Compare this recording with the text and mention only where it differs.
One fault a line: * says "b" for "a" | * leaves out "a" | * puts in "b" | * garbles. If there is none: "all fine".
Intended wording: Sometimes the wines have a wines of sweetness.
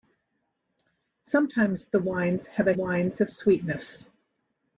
all fine